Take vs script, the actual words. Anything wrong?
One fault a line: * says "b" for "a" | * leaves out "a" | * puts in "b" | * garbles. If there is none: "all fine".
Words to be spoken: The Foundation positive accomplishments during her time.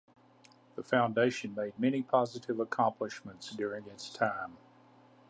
* puts in "made many"
* says "its" for "her"